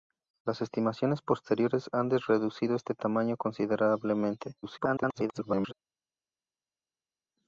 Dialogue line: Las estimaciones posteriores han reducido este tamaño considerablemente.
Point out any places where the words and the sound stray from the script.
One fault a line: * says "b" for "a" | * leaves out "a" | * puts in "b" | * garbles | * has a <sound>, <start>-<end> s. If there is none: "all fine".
* garbles